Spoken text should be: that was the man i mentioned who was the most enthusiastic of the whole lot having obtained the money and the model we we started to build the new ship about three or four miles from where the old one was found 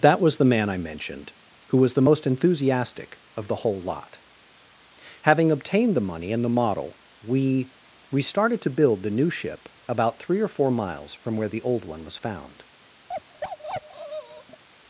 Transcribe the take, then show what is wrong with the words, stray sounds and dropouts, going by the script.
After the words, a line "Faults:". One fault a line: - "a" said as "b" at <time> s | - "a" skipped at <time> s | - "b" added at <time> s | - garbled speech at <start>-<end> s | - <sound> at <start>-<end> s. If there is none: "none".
that was the man i mentioned who was the most enthusiastic of the whole lot having obtained the money and the model we we started to build the new ship about three or four miles from where the old one was found
Faults:
- bark at 13.1-14.6 s